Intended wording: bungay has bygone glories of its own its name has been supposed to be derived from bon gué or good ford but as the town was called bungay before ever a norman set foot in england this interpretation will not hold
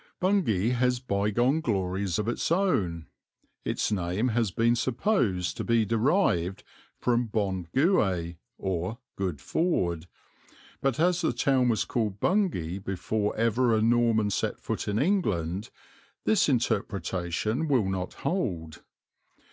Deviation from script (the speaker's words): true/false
false